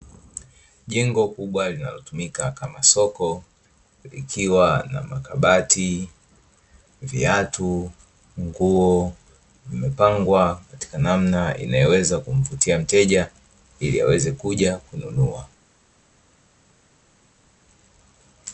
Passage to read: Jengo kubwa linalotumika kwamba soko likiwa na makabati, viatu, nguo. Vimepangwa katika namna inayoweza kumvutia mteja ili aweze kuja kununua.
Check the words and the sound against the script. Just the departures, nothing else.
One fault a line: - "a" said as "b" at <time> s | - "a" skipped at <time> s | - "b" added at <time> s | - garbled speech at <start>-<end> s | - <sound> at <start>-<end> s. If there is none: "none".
- "kwamba" said as "kama" at 2.5 s